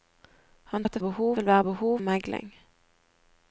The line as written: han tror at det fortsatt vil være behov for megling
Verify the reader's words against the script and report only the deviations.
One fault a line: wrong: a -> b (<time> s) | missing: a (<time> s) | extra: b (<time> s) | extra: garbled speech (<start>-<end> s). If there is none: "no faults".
missing: tror (0.8 s)
wrong: fortsatt -> behov (1.0 s)
missing: for (2.0 s)